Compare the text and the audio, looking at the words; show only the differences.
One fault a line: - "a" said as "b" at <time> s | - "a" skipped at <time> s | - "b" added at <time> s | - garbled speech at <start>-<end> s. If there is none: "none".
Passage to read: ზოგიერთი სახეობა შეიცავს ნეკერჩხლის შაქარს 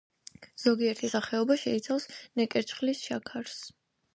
none